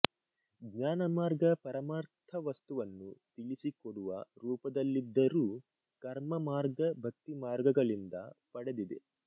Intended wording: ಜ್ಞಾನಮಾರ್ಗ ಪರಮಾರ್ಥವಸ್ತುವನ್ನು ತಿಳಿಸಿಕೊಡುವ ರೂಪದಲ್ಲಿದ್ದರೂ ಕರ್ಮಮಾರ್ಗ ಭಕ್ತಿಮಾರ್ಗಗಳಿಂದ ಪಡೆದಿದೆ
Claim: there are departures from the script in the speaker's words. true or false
false